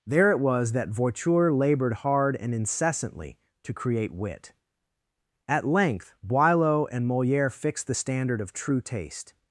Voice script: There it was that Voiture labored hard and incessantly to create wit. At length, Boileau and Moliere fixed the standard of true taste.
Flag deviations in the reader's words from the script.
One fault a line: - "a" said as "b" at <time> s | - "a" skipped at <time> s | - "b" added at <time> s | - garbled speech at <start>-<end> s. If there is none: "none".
none